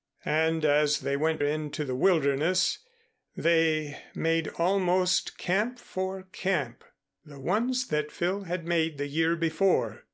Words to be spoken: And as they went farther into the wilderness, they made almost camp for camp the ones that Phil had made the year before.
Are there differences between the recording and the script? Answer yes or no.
yes